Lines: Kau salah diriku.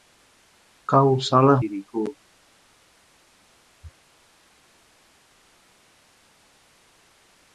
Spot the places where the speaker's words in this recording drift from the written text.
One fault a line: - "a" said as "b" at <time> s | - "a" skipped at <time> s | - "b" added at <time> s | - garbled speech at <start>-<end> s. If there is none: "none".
none